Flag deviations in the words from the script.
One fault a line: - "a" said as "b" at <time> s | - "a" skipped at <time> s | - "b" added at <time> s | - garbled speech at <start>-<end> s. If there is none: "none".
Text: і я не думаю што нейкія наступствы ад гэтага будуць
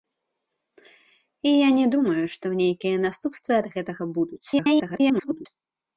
- garbled speech at 4.5-5.5 s